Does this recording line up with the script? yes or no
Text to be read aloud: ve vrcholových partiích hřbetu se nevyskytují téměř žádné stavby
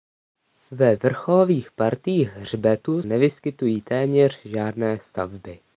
no